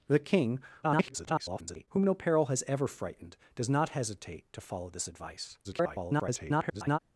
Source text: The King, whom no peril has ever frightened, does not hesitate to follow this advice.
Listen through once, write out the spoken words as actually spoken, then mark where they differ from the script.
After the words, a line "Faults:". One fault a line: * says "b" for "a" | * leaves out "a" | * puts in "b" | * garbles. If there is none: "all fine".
The King, [garbled] whom no peril has ever frightened, does not hesitate to follow this advice. [garbled]
Faults:
* garbles
* garbles